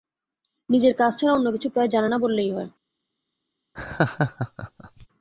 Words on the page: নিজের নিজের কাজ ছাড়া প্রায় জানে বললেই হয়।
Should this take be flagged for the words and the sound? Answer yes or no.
yes